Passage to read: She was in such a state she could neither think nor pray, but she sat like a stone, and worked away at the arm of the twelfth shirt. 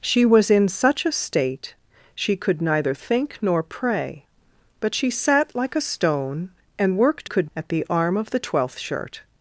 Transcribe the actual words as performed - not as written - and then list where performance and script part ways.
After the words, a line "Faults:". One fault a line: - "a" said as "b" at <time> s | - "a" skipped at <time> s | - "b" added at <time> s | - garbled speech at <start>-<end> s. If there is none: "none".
She was in such a state she could neither think nor pray, but she sat like a stone, and worked could at the arm of the twelfth shirt.
Faults:
- "away" said as "could" at 7.2 s